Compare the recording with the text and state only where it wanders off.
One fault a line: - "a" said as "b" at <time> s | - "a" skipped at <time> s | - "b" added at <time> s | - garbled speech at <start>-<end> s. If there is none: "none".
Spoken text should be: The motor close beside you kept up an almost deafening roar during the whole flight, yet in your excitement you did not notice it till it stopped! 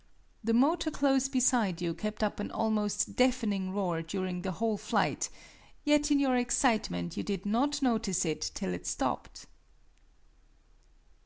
none